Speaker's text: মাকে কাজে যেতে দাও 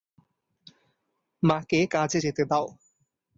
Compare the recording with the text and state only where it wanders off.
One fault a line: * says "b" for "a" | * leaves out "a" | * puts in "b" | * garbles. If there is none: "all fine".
all fine